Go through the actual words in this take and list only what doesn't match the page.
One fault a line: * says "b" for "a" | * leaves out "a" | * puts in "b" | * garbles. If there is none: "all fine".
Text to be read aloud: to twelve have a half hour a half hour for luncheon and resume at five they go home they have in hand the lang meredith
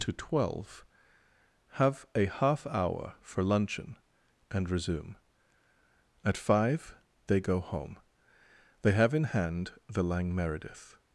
* leaves out "a half hour"